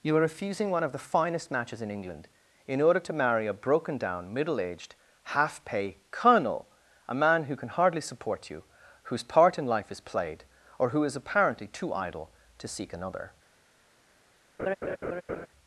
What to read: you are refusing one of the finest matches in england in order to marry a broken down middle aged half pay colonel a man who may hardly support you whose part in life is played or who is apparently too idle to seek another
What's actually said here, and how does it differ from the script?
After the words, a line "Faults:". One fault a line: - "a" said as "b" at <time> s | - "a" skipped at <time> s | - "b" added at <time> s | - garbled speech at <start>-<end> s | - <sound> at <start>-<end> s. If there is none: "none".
you are refusing one of the finest matches in england in order to marry a broken down middle aged half pay colonel a man who can hardly support you whose part in life is played or who is apparently too idle to seek another
Faults:
- "may" said as "can" at 7.5 s
- laugh at 14.6-15.5 s